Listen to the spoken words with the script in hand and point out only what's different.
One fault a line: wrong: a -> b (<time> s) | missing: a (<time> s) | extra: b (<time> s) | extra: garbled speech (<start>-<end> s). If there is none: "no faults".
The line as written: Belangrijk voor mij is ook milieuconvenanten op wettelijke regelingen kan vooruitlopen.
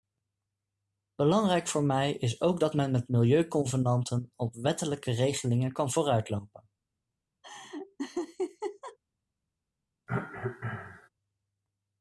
extra: dat men met (2.6 s)